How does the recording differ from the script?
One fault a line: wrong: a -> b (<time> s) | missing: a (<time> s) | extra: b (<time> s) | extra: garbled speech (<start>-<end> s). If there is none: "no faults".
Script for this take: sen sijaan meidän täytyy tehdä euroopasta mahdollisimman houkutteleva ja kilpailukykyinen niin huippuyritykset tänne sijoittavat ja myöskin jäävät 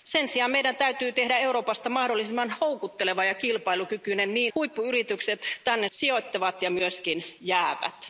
no faults